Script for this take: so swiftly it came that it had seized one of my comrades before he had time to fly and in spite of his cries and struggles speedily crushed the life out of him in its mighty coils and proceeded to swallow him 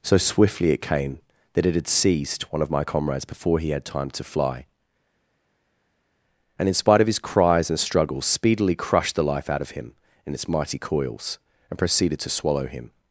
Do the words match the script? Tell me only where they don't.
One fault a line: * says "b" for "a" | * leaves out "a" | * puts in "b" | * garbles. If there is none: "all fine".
all fine